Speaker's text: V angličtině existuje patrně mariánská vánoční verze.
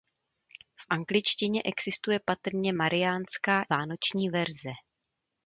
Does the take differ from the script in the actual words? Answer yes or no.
no